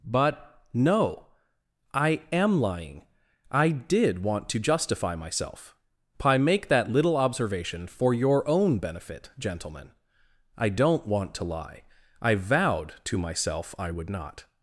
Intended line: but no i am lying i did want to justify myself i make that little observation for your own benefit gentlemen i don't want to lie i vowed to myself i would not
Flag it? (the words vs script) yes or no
no